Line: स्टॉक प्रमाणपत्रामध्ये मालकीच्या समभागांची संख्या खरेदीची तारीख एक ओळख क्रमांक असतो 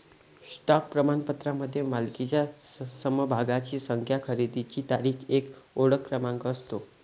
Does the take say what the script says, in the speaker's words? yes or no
yes